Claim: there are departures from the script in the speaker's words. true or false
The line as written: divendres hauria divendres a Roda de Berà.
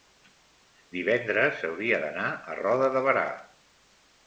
true